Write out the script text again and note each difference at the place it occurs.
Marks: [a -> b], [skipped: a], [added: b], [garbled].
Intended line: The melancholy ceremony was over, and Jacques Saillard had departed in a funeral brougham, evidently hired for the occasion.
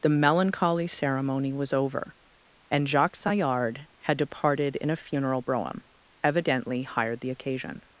The melancholy ceremony was over, and Jacques Saillard had departed in a funeral brougham, evidently hired [skipped: for] the occasion.